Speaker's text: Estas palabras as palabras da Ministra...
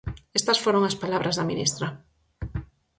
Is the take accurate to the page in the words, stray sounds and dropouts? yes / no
no